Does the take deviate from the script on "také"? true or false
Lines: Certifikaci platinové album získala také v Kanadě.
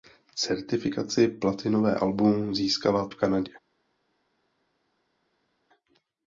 true